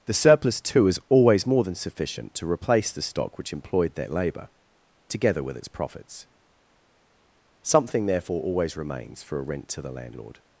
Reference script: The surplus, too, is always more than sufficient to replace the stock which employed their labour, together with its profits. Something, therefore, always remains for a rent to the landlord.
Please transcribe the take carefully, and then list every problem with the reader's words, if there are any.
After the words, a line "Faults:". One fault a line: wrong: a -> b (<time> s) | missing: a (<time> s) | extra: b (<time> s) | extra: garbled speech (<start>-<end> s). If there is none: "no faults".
The surplus, too, is always more than sufficient to replace the stock which employed their labour, together with its profits. Something, therefore, always remains for a rent to the landlord.
Faults:
no faults